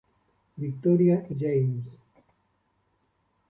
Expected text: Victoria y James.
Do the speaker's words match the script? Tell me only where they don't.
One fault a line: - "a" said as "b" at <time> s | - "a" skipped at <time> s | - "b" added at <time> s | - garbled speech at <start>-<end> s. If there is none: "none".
none